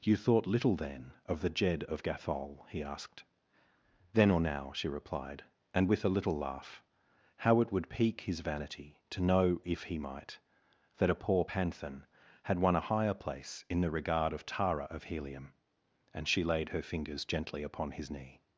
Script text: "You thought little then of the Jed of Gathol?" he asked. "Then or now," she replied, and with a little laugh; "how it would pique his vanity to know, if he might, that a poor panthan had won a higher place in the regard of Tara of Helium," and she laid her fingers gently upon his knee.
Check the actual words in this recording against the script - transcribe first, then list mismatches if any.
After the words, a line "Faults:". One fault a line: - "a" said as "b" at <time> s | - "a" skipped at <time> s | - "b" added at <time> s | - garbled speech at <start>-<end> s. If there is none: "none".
"You thought little then of the Jed of Gathol?" he asked. "Then or now," she replied, and with a little laugh; "how it would pique his vanity to know, if he might, that a poor panthan had won a higher place in the regard of Tara of Helium," and she laid her fingers gently upon his knee.
Faults:
none